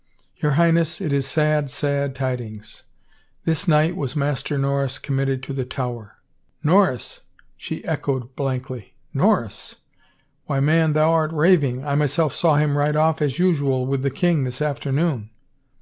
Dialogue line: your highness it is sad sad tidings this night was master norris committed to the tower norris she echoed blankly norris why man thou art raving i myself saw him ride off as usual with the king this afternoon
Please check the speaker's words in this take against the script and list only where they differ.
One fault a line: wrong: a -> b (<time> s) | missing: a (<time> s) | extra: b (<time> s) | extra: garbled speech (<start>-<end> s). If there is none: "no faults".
no faults